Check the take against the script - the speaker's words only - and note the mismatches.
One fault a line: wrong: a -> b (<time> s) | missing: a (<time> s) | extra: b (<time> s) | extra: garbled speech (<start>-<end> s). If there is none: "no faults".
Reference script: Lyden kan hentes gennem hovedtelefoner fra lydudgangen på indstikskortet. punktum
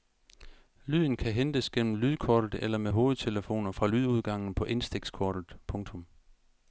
extra: lydkortet eller med (1.9 s)